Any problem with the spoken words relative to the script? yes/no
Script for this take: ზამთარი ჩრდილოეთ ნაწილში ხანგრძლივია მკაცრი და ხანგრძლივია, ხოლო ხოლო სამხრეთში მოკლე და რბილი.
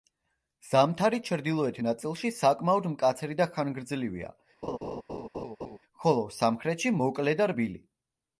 yes